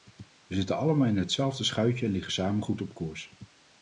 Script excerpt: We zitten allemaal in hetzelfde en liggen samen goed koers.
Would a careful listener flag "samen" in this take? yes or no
no